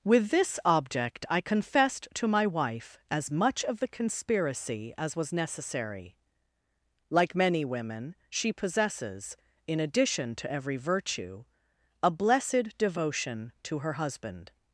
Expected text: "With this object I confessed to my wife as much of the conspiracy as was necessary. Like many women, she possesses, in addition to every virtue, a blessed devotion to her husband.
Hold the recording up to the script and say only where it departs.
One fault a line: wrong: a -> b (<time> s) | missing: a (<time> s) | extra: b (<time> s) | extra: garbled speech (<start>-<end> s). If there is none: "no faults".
no faults